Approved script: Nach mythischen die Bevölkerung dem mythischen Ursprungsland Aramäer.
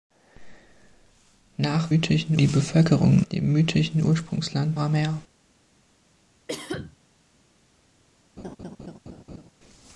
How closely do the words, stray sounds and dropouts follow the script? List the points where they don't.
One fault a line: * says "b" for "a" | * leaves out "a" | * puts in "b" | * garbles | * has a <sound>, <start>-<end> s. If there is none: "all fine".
* has a cough, 6.5-7.0 s
* has a laugh, 8.4-9.5 s